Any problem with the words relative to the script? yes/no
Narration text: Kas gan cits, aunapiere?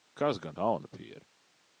yes